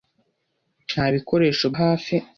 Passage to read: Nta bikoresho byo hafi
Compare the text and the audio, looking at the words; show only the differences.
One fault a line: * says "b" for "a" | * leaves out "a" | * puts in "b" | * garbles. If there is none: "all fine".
* leaves out "byo"